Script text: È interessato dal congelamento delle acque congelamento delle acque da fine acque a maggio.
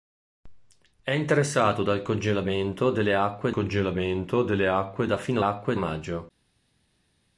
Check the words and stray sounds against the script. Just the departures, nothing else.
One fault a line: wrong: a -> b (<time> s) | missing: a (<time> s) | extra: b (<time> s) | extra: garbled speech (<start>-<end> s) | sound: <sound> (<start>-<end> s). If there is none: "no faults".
no faults